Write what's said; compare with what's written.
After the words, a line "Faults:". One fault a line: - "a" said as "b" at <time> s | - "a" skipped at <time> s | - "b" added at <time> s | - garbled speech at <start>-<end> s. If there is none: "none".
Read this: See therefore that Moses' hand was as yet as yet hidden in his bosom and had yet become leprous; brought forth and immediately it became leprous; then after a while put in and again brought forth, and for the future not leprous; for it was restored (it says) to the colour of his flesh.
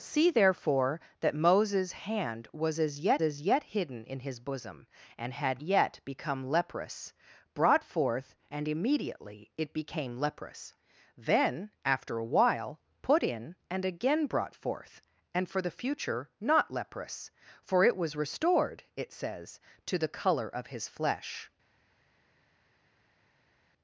See therefore that Moses' hand was as yet as yet hidden in his bosom and had yet become leprous; brought forth and immediately it became leprous; then after a while put in and again brought forth, and for the future not leprous; for it was restored (it says) to the colour of his flesh.
Faults:
none